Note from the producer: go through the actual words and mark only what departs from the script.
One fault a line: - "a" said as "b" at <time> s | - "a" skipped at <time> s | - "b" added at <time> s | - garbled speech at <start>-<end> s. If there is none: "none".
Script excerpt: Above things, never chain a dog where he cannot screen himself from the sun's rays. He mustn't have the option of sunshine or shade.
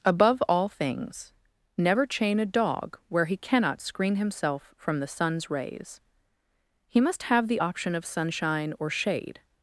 - "all" added at 0.5 s
- "mustn't" said as "must" at 7.0 s